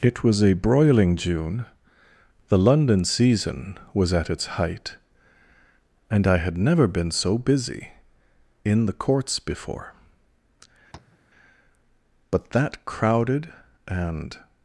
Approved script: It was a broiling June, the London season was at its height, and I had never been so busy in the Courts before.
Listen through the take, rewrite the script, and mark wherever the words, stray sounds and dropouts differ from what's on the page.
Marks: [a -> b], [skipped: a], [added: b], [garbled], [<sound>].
It was a broiling June, the London season was at its height, and I had never been so busy in the Courts before. [tap] [added: But that crowded and]